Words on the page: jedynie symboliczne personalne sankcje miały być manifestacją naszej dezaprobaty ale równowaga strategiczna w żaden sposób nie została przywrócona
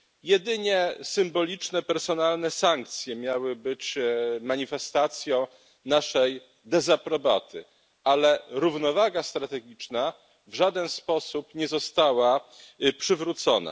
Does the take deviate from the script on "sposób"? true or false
false